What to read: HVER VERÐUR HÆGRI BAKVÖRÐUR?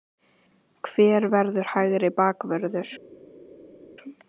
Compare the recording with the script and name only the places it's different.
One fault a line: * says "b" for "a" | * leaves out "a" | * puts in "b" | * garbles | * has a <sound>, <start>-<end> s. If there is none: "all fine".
all fine